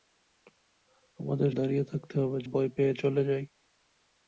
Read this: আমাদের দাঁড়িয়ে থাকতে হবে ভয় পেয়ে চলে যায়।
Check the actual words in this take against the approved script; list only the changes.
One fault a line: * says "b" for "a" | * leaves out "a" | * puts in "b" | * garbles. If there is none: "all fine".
all fine